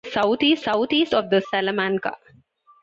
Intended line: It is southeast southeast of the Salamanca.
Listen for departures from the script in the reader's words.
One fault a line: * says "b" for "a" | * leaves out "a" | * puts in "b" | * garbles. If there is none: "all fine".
all fine